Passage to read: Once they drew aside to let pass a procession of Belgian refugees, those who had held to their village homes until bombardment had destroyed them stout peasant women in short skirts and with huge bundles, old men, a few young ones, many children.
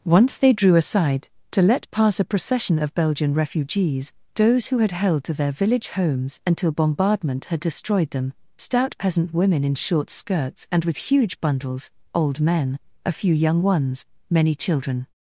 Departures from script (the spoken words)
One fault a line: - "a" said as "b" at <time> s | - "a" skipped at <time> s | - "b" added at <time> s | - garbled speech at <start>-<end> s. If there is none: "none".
none